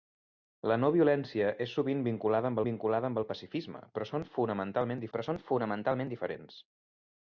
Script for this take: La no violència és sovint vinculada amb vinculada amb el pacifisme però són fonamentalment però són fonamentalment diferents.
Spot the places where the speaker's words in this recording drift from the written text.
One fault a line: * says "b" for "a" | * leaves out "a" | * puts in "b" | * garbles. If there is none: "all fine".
all fine